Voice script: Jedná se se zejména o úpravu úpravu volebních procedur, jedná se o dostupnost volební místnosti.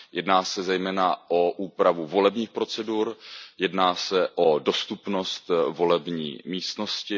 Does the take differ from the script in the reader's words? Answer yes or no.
yes